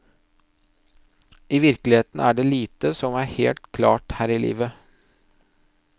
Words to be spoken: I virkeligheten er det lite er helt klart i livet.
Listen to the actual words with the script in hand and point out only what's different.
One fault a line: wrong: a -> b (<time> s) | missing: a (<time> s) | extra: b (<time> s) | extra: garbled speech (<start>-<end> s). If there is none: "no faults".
extra: som (3.0 s)
extra: her (4.2 s)